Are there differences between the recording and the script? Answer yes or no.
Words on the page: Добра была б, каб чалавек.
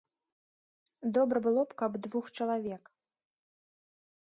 yes